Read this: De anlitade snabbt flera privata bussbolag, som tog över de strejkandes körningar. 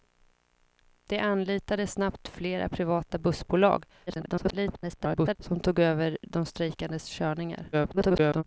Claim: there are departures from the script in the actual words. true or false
true